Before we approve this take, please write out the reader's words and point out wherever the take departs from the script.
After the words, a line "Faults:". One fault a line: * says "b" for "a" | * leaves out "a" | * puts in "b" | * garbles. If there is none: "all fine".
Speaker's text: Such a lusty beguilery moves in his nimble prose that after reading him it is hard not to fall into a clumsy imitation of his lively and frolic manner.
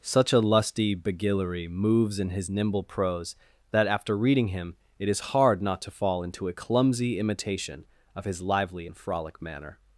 Such a lusty beguilery moves in his nimble prose that after reading him it is hard not to fall into a clumsy imitation of his lively and frolic manner.
Faults:
all fine